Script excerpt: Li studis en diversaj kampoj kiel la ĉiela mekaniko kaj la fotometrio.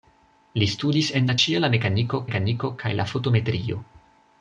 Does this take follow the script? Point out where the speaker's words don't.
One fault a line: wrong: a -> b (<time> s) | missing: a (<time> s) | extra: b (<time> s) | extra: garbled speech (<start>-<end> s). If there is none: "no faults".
missing: diversaj kampoj kiel (1.3 s)
extra: mekaniko (2.3 s)